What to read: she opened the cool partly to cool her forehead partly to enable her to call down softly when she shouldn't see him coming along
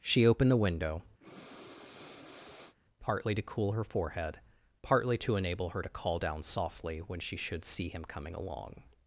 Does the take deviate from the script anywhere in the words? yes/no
yes